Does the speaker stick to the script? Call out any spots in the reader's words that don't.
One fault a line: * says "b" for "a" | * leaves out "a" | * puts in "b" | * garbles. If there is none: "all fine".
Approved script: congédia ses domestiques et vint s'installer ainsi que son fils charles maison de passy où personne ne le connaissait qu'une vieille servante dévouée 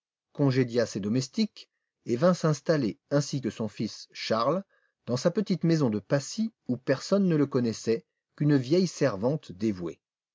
* puts in "dans sa petite"